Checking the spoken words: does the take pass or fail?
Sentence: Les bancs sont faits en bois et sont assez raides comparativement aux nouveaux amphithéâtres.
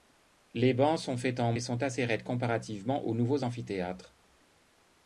fail